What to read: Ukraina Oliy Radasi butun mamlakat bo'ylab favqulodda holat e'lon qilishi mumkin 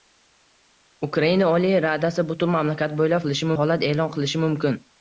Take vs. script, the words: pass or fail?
fail